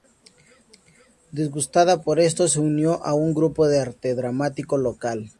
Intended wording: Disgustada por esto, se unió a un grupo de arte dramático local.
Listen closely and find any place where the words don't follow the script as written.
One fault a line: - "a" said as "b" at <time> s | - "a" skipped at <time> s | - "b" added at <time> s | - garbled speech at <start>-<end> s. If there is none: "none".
none